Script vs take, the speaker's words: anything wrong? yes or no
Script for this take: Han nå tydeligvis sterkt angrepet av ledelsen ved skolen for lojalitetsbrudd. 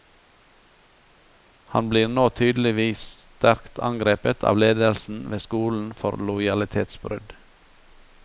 yes